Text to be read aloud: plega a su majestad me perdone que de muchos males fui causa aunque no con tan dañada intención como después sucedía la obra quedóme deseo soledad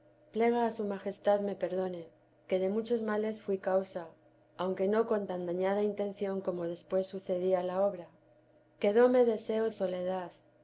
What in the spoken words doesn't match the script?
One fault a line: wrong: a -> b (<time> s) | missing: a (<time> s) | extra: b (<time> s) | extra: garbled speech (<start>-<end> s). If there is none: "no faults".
no faults